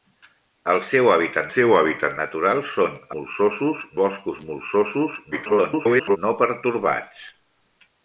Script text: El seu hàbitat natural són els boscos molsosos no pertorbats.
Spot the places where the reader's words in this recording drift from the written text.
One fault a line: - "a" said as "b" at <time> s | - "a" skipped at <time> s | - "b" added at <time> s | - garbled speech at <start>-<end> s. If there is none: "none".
- "seu hàbitat" added at 1.6 s
- "els" said as "molsosos" at 3.2 s
- garbled speech at 5.3-6.2 s